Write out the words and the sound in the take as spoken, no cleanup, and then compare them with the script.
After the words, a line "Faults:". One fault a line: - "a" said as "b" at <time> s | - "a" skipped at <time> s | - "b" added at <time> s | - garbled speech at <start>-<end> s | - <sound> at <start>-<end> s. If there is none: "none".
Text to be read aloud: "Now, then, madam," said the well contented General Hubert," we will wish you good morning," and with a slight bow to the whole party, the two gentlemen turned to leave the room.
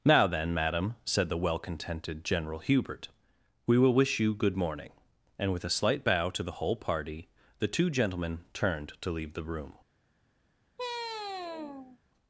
"Now, then, madam," said the well contented General Hubert," we will wish you good morning," and with a slight bow to the whole party, the two gentlemen turned to leave the room.
Faults:
- sigh at 10.8-12.0 s